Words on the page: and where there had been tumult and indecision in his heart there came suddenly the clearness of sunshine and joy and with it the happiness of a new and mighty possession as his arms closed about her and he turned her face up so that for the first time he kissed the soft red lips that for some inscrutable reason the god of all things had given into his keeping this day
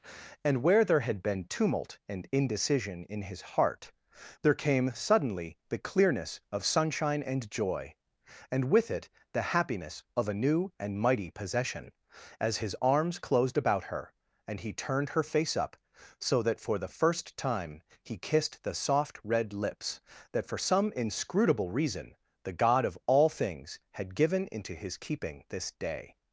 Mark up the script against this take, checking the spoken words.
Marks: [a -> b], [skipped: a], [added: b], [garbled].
and where there had been tumult and indecision in his heart there came suddenly the clearness of sunshine and joy and with it the happiness of a new and mighty possession as his arms closed about her and he turned her face up so that for the first time he kissed the soft red lips that for some inscrutable reason the god of all things had given into his keeping this day